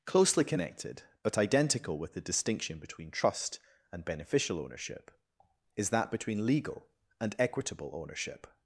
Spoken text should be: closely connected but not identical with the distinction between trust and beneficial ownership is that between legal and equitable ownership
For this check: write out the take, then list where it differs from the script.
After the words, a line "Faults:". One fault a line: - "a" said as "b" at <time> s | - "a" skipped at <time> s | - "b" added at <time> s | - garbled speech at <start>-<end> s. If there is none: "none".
closely connected but identical with the distinction between trust and beneficial ownership is that between legal and equitable ownership
Faults:
- "not" skipped at 1.4 s